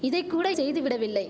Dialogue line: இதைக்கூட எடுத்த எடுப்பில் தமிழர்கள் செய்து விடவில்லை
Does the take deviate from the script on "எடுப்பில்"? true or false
true